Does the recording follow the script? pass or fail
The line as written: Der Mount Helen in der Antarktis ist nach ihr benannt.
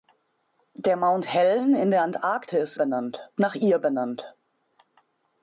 fail